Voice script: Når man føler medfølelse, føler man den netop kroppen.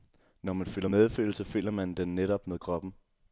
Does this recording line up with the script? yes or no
no